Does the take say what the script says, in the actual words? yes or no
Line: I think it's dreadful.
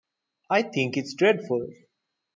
yes